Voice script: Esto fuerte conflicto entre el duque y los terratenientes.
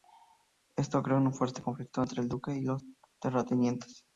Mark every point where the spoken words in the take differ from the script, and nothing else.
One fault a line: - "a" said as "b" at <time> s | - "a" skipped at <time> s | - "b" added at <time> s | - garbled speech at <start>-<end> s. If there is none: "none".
- "creó un" added at 1.0 s